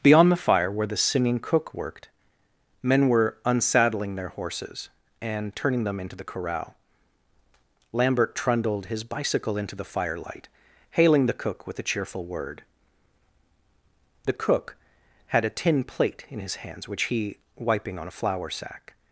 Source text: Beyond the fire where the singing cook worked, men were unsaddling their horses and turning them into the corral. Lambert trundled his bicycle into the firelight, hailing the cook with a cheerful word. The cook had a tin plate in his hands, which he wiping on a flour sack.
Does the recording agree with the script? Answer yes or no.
yes